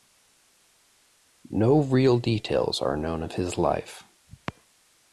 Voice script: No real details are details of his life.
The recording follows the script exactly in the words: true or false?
false